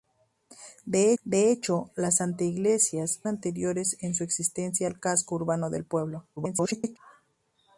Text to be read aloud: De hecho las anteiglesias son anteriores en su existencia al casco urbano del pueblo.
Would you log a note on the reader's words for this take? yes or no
yes